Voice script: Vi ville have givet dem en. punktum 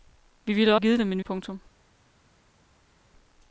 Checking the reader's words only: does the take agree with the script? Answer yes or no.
yes